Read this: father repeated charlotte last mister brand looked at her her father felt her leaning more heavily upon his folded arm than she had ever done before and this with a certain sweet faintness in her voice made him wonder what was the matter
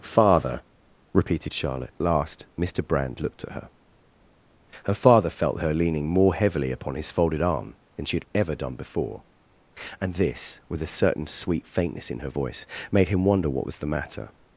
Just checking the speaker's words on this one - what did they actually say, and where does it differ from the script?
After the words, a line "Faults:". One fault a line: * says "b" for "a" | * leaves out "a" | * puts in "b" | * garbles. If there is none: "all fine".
father repeated charlotte last mister brand looked at her her father felt her leaning more heavily upon his folded arm than she had ever done before and this with a certain sweet faintness in her voice made him wonder what was the matter
Faults:
all fine